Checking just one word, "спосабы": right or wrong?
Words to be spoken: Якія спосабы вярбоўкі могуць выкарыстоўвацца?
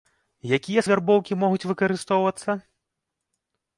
wrong